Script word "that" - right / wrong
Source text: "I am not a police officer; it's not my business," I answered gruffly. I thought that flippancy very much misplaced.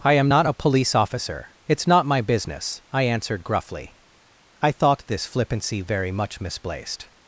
wrong